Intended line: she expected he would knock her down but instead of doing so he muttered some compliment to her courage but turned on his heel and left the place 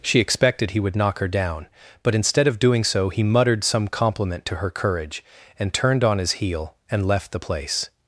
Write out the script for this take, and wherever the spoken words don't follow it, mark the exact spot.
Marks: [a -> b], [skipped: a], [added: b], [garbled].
she expected he would knock her down but instead of doing so he muttered some compliment to her courage [but -> and] turned on his heel and left the place